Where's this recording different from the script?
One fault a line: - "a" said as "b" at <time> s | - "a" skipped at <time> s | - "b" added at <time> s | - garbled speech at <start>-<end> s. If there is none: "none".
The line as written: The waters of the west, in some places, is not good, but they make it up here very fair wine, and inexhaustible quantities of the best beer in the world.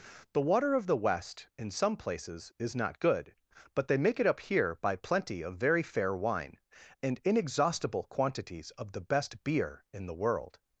- "waters" said as "water" at 0.4 s
- "by plenty of" added at 4.8 s